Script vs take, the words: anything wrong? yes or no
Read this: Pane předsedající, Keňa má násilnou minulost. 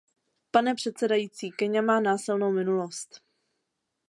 no